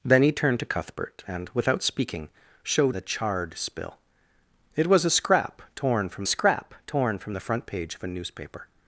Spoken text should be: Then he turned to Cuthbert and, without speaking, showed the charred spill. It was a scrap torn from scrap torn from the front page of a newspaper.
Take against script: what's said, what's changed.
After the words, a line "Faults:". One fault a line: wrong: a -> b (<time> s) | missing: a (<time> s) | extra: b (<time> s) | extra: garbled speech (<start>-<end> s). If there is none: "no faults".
Then he turned to Cuthbert and, without speaking, showed the charred spill. It was a scrap torn from scrap torn from the front page of a newspaper.
Faults:
no faults